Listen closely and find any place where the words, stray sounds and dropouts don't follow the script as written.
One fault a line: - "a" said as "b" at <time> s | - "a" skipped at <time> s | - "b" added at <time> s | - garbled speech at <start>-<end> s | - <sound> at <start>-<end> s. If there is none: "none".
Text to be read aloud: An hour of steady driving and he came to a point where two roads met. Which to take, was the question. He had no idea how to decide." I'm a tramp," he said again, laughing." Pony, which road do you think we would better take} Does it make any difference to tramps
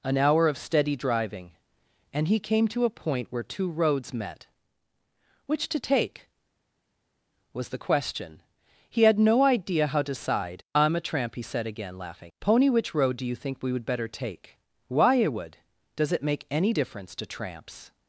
- "why it would" added at 14.9 s